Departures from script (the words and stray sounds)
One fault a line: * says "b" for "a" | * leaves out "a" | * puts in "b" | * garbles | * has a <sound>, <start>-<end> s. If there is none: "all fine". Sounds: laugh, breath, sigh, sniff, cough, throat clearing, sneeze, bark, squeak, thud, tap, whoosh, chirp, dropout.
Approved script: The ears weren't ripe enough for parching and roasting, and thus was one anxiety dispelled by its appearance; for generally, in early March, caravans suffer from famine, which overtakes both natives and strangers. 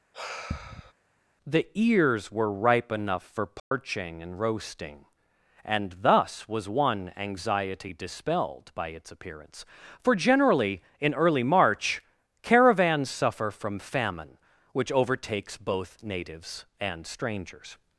* has a sigh, 0.1-0.9 s
* says "were" for "weren't"
* has a dropout, 3.6-3.7 s